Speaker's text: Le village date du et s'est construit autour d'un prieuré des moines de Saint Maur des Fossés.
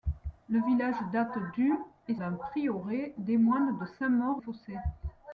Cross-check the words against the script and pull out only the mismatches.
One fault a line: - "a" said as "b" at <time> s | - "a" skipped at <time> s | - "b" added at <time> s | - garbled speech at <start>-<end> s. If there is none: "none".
- "s'est construit autour" skipped at 2.1 s
- "des" skipped at 4.4 s